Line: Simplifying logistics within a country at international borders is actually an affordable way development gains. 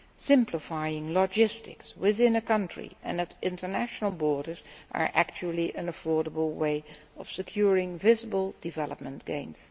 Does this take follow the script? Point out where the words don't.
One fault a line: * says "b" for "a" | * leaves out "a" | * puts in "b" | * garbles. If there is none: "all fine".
* puts in "and"
* puts in "of securing visible"